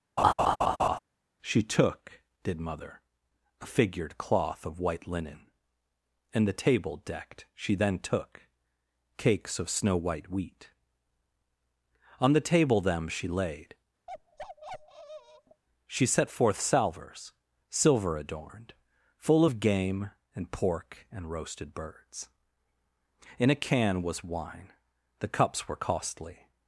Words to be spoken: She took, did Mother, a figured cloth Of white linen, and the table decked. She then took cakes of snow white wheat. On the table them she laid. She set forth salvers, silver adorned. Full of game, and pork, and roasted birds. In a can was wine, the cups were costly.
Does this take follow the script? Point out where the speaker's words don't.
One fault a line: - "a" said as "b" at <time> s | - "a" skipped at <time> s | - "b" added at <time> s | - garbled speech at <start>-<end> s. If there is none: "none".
none